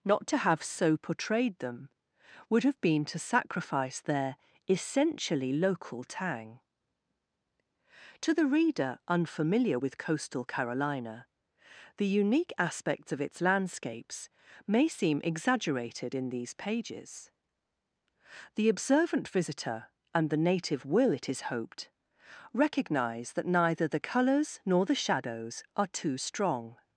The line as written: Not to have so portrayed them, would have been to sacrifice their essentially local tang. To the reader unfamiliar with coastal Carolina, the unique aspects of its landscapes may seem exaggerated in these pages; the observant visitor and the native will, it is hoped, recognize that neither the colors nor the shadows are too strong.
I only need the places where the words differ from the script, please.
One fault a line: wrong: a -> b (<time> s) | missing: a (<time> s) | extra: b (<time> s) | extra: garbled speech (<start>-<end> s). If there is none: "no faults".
no faults